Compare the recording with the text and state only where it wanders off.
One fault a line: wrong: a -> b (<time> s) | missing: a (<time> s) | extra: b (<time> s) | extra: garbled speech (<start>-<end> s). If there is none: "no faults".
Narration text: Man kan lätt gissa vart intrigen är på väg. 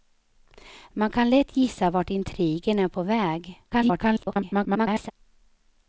extra: garbled speech (3.7-5.1 s)